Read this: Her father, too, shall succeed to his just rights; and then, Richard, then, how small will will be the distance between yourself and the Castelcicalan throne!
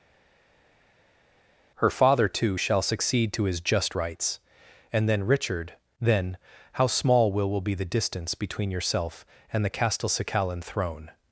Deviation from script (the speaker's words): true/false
false